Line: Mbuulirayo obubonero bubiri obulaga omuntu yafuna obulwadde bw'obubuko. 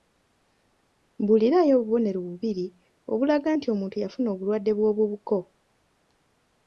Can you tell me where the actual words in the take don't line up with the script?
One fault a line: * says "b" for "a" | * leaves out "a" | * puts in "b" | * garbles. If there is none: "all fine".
* puts in "nti"